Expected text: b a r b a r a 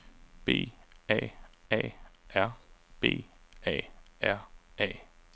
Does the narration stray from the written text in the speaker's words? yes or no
yes